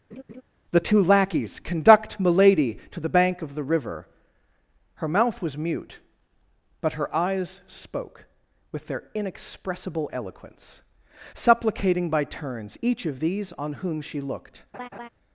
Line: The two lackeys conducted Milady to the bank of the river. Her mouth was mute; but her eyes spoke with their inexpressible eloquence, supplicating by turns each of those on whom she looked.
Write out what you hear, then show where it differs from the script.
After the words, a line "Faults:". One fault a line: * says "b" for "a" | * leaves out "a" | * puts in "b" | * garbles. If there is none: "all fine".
The two lackeys conduct Milady to the bank of the river. Her mouth was mute; but her eyes spoke with their inexpressible eloquence, supplicating by turns each of these on whom she looked.
Faults:
* says "conduct" for "conducted"
* says "these" for "those"